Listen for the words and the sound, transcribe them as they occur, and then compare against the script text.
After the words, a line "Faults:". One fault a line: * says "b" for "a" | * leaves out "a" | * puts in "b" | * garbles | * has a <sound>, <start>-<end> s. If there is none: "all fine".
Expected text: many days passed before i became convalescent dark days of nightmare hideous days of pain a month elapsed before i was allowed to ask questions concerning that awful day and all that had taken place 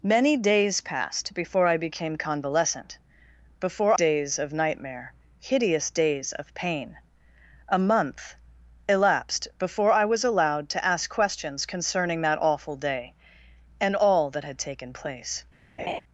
many days passed before i became convalescent before days of nightmare hideous days of pain a month elapsed before i was allowed to ask questions concerning that awful day and all that had taken place
Faults:
* says "before" for "dark"
* has a laugh, 15.8-16.0 s